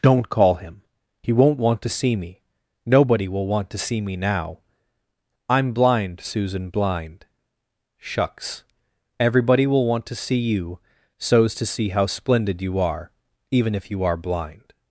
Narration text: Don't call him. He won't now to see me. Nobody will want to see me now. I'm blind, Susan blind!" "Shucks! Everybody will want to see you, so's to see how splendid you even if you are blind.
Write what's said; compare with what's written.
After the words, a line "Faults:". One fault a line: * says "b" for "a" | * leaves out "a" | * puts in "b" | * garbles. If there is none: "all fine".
Don't call him. He won't want to see me. Nobody will want to see me now. I'm blind, Susan blind!" "Shucks! Everybody will want to see you, so's to see how splendid you are, even if you are blind.
Faults:
* says "want" for "now"
* puts in "are"